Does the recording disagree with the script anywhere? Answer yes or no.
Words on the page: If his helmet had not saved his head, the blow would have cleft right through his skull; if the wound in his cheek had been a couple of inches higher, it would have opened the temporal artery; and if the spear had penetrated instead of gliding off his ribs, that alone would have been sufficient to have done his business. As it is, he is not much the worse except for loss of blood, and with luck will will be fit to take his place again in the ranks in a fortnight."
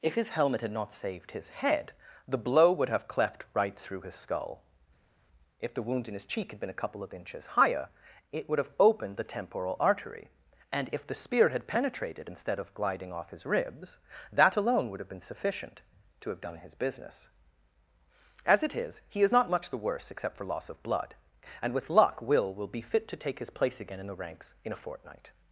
no